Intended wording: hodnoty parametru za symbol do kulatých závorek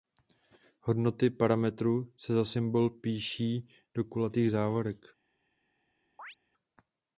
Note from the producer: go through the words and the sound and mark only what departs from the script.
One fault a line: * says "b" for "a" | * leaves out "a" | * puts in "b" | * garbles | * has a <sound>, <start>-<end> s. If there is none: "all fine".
* puts in "se"
* puts in "píší"
* has a chirp, 6.2-6.4 s